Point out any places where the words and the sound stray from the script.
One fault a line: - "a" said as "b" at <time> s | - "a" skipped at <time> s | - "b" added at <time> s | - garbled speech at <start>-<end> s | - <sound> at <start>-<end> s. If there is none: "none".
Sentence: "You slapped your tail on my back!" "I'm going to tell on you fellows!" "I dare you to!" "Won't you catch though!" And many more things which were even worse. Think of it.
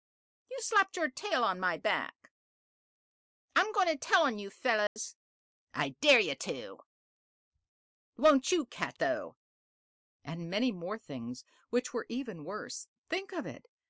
- dropout at 4.9-5.0 s